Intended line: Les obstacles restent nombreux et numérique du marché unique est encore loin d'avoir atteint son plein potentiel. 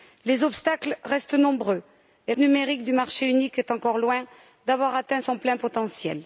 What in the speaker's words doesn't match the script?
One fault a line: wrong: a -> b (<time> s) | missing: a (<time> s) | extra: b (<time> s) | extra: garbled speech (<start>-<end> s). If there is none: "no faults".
no faults